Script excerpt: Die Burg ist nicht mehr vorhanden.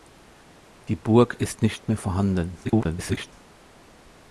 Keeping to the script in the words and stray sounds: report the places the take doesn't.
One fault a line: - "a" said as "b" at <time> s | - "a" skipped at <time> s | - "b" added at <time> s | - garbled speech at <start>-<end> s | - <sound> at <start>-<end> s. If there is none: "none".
- garbled speech at 2.6-3.3 s